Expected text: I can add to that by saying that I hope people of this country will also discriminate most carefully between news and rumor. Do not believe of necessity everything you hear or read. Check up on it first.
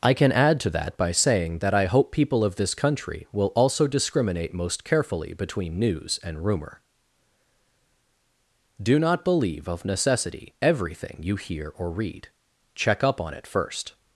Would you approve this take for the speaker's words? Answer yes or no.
yes